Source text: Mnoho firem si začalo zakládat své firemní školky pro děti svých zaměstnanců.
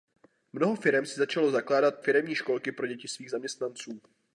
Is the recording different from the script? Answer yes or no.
yes